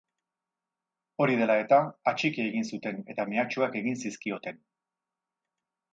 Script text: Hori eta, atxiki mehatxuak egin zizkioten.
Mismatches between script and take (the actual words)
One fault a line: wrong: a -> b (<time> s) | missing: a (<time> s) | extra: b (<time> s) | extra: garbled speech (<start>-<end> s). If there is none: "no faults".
extra: dela (1.4 s)
extra: egin zuten eta (2.5 s)